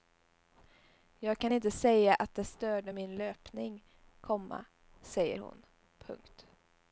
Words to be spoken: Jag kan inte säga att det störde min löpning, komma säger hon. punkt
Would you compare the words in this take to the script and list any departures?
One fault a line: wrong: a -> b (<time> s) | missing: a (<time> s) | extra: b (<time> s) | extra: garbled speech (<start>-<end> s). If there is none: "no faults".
no faults